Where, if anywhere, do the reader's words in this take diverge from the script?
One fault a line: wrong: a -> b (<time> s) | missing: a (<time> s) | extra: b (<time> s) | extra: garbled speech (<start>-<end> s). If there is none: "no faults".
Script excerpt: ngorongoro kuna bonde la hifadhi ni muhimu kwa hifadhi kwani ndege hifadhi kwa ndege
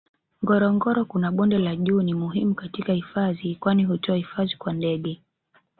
wrong: hifadhi -> juu (1.8 s)
wrong: kwa -> katika (2.5 s)
wrong: ndege -> hutoa (3.8 s)